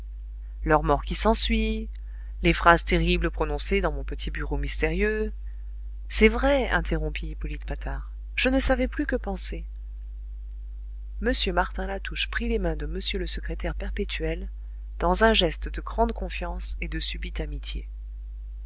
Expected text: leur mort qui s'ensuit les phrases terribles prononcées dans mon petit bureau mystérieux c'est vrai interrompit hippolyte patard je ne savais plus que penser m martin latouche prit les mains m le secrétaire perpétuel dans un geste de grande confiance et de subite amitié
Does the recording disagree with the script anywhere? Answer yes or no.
yes